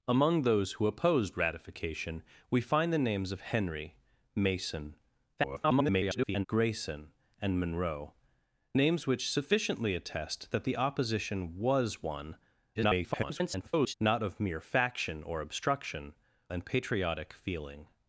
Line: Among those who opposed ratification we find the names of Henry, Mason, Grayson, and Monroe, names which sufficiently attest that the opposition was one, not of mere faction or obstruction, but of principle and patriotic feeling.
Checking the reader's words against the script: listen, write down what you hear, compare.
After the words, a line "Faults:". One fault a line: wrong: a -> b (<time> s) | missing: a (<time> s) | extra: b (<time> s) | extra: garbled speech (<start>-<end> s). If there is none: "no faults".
Among those who opposed ratification we find the names of Henry, Mason, [garbled] Grayson, and Monroe, names which sufficiently attest that the opposition was one, [garbled] not of mere faction or obstruction, and patriotic feeling.
Faults:
extra: garbled speech (5.4-6.5 s)
extra: garbled speech (12.8-13.9 s)
missing: but of principle (16.1 s)